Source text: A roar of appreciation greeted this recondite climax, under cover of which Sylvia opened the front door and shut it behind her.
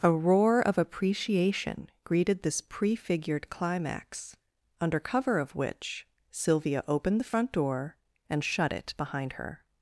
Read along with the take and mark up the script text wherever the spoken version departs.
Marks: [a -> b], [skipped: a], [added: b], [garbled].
A roar of appreciation greeted this [recondite -> prefigured] climax, under cover of which Sylvia opened the front door and shut it behind her.